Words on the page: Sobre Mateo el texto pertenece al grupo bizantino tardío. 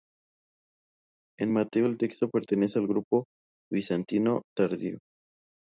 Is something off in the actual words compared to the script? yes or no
yes